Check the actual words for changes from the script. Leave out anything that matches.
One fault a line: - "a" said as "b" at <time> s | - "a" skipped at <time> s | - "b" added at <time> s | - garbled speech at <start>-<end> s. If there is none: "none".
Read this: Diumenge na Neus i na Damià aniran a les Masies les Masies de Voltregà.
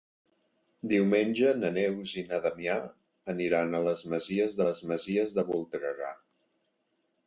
none